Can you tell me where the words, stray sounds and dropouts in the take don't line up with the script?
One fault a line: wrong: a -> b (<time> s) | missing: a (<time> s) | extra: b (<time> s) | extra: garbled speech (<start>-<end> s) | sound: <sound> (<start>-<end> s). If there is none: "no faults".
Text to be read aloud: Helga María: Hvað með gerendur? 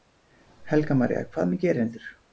no faults